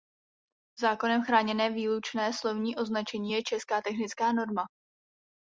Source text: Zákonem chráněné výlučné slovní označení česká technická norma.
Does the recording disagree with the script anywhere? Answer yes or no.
yes